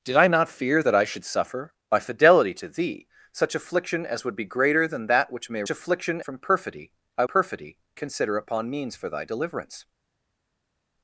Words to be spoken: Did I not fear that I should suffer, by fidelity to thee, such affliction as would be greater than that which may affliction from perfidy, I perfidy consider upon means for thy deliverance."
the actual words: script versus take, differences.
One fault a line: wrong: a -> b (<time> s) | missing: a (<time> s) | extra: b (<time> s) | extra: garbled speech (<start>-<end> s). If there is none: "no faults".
no faults